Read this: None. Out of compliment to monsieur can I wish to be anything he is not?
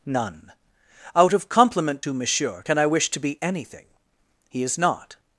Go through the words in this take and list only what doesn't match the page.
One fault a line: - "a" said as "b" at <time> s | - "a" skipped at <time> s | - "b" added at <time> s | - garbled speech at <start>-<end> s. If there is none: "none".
none